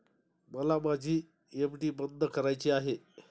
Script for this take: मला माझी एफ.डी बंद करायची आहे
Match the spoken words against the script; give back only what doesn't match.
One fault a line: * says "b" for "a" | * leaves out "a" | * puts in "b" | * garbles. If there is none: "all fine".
all fine